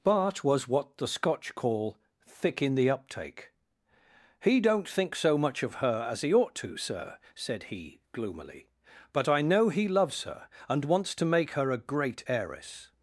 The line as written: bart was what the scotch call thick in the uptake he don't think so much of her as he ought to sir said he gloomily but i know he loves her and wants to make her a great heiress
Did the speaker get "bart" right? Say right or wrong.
right